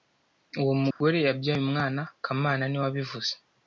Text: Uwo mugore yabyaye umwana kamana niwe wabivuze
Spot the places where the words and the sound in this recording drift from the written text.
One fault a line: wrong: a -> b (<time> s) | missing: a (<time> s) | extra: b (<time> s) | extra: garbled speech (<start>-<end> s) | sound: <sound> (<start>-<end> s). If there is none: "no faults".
sound: dropout (0.9-1.0 s)